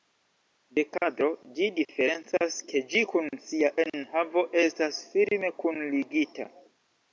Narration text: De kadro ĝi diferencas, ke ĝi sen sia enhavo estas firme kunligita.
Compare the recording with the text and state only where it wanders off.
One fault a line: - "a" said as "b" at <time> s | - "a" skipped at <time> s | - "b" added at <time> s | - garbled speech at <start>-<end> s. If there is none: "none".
- "sen" said as "kun" at 3.1 s